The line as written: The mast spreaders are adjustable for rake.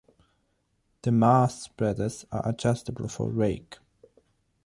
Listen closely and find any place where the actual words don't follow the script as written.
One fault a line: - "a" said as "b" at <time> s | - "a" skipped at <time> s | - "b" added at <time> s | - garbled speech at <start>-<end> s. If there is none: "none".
none